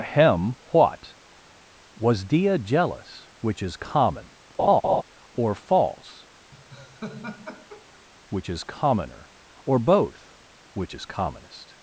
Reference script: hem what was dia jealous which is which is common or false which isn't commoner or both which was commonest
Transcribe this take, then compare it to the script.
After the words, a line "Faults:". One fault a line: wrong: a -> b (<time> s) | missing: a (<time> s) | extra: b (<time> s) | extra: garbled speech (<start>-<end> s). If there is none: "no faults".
hem what was dia jealous which is common or false which is commoner or both which is commonest
Faults:
missing: which is (3.8 s)
wrong: isn't -> is (8.5 s)
wrong: was -> is (10.9 s)